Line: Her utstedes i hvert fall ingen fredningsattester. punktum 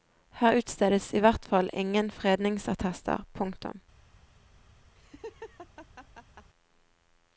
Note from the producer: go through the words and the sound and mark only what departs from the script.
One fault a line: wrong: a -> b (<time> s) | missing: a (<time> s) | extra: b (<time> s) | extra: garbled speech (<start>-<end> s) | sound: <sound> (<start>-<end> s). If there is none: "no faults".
sound: laugh (4.9-6.5 s)